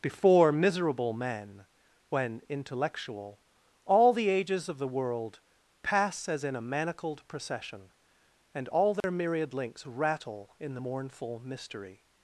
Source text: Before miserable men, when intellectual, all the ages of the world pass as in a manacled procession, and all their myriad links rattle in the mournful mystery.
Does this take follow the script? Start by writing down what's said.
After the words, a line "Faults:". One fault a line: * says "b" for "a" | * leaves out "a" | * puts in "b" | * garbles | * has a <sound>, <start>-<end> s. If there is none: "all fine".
Before miserable men, when intellectual, all the ages of the world pass as in a manacled procession, and all their myriad links rattle in the mournful mystery.
Faults:
* has a dropout, 9.0-9.0 s